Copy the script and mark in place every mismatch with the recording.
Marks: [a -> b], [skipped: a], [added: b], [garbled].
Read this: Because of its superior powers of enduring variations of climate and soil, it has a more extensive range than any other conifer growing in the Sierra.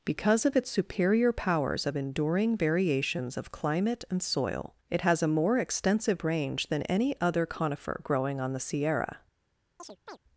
Because of its superior powers of enduring variations of climate and soil, it has a more extensive range than any other conifer growing [in -> on] the Sierra.